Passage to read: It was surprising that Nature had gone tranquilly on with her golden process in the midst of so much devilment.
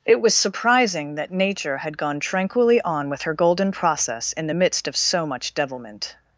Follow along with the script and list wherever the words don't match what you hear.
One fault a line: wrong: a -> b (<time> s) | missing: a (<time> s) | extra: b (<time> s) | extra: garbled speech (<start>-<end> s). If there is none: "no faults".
no faults